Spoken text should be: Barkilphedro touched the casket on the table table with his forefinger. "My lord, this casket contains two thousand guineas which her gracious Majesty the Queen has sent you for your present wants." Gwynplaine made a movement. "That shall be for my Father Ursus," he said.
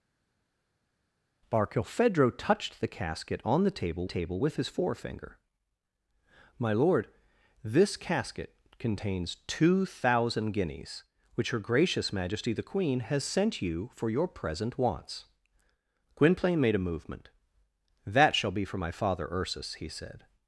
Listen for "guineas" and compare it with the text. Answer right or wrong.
right